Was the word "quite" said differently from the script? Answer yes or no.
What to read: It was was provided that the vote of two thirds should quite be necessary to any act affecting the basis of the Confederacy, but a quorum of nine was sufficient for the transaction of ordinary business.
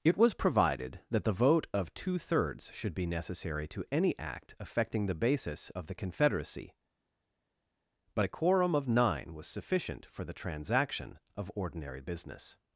yes